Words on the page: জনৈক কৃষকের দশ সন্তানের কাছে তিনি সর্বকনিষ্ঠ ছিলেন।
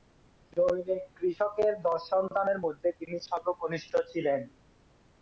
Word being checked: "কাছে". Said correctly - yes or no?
no